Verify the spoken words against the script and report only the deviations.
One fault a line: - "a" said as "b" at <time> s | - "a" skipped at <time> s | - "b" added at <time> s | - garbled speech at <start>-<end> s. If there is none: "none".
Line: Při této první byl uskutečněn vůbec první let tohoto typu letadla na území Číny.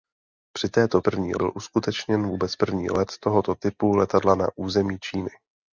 none